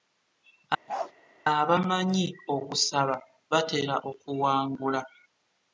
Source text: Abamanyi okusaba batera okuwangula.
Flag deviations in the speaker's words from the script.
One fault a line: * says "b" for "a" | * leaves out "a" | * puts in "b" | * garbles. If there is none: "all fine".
all fine